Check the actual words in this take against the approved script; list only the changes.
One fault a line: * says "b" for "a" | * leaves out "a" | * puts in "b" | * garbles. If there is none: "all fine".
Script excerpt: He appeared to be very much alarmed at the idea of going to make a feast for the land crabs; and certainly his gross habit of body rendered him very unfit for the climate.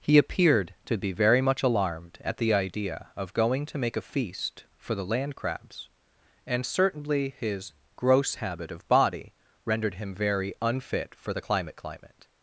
* puts in "climate"